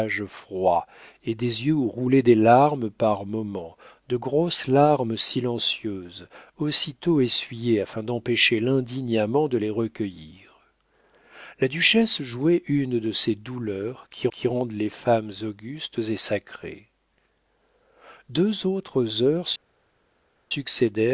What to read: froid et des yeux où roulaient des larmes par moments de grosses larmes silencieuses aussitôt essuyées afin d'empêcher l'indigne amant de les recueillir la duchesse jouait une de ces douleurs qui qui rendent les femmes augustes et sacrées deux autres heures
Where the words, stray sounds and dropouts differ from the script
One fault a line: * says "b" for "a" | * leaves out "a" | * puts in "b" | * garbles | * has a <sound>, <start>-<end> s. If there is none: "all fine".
all fine